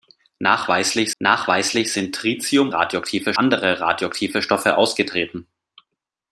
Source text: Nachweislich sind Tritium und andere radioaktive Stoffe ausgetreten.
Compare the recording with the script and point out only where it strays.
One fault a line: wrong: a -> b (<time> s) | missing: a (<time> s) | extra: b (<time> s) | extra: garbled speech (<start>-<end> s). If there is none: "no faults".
extra: nachweislich (1.2 s)
wrong: und -> radioaktive (2.7 s)